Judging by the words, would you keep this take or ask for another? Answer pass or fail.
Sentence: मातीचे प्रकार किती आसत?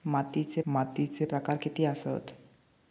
fail